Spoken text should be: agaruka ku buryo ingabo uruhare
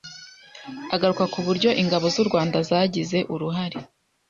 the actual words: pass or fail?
fail